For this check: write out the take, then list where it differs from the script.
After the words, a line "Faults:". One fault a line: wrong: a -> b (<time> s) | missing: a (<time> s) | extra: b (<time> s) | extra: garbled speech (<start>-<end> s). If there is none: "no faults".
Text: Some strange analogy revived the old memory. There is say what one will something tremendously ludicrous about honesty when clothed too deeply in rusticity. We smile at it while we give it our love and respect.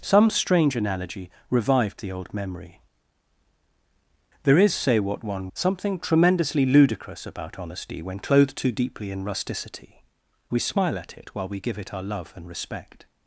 Some strange analogy revived the old memory. There is say what one something tremendously ludicrous about honesty when clothed too deeply in rusticity. We smile at it while we give it our love and respect.
Faults:
missing: will (5.5 s)